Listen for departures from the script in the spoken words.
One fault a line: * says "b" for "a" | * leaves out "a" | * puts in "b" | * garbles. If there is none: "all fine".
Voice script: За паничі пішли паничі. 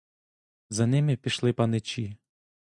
* says "ними" for "паничі"